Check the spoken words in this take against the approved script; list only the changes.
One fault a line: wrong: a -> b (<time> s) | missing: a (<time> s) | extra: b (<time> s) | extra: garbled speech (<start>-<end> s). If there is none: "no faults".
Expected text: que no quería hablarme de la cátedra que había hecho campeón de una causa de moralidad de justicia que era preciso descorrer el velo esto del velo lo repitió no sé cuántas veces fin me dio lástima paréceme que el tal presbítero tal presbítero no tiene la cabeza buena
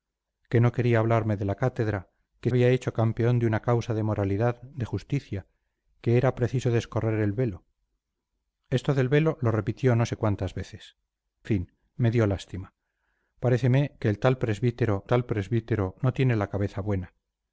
no faults